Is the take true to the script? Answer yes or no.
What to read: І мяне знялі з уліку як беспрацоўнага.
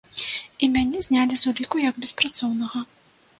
yes